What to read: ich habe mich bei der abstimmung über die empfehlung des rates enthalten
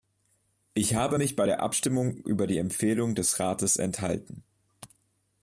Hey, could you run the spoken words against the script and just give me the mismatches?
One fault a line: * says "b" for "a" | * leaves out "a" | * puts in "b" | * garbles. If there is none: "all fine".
all fine